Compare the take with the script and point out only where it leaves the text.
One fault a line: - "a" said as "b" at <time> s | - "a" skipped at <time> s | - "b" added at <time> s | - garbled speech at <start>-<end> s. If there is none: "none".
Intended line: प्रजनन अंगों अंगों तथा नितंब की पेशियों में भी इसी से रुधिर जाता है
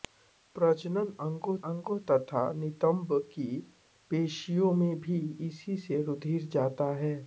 none